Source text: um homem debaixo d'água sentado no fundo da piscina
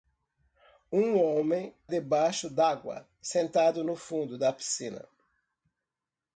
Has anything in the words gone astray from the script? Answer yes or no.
no